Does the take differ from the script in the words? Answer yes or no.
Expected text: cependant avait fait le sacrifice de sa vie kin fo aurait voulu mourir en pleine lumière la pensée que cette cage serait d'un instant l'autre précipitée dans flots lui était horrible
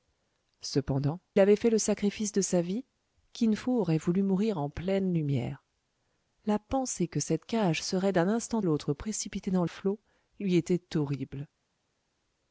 no